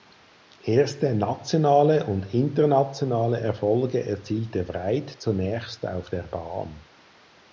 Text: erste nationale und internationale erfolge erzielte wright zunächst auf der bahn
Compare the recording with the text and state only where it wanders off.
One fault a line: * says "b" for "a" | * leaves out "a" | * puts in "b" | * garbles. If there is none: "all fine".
all fine